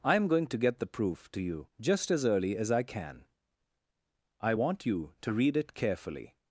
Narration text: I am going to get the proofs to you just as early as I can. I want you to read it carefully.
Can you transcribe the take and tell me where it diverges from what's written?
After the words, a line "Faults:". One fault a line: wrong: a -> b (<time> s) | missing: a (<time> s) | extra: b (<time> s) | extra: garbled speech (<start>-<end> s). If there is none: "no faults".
I am going to get the proof to you just as early as I can. I want you to read it carefully.
Faults:
wrong: proofs -> proof (0.9 s)